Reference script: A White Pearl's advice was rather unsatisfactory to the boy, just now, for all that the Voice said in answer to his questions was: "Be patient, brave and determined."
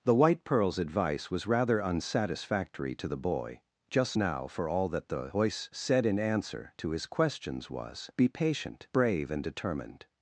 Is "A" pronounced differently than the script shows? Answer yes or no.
yes